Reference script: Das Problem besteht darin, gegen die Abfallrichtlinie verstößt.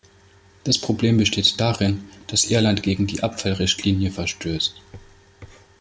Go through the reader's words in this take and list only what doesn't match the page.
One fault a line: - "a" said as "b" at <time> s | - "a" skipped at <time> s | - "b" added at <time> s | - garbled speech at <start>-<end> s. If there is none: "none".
- "dass Irland" added at 2.3 s